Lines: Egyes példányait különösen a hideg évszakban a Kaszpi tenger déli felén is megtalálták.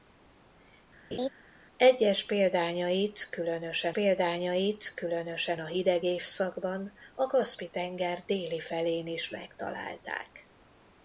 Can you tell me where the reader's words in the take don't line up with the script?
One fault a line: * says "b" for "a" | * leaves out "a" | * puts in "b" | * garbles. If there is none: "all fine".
* puts in "példányait különösen"